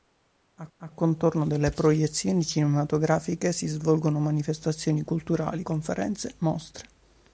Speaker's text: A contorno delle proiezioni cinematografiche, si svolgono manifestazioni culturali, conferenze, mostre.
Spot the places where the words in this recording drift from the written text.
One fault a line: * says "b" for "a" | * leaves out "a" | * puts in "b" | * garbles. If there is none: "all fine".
* puts in "a"